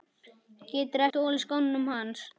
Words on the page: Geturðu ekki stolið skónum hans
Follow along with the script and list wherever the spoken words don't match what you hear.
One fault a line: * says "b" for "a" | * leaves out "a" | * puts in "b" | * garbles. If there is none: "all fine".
* leaves out "ekki"